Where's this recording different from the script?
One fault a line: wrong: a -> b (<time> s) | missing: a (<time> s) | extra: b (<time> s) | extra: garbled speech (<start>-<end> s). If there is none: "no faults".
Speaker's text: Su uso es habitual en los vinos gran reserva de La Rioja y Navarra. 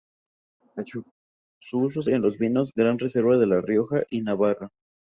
missing: habitual (2.1 s)